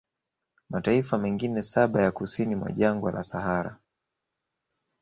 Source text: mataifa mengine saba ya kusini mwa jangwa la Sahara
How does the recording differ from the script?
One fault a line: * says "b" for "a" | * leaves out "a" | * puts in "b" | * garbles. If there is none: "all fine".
all fine